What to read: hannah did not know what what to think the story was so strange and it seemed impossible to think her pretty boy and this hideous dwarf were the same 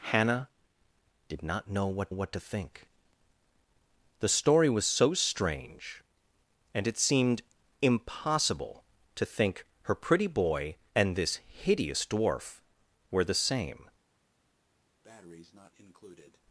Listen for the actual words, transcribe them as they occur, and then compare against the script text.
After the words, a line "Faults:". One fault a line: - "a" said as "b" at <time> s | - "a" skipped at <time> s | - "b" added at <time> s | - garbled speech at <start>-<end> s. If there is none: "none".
hannah did not know what what to think the story was so strange and it seemed impossible to think her pretty boy and this hideous dwarf were the same
Faults:
none